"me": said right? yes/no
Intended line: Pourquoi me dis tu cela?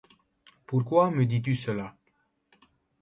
yes